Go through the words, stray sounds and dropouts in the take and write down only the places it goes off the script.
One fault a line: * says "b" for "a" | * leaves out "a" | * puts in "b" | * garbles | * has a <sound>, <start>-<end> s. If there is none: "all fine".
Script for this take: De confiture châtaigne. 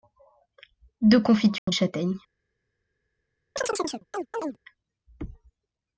* has a dropout, 1.6-1.7 s
* has a chirp, 3.6-4.6 s